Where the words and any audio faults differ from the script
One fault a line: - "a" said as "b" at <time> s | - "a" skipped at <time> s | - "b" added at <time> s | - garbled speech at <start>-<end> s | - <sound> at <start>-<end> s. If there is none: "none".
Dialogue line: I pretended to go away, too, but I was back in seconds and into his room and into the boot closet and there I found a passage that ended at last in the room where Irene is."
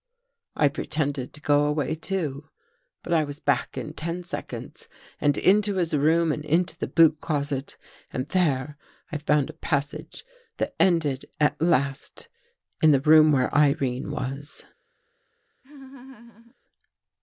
- "ten" added at 3.9 s
- "is" said as "was" at 14.1 s
- laugh at 15.6-16.6 s